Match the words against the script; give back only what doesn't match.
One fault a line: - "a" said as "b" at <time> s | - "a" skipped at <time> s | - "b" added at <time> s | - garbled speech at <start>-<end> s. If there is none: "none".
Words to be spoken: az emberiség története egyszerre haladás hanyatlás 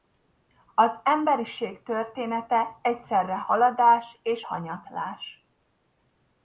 - "és" added at 4.2 s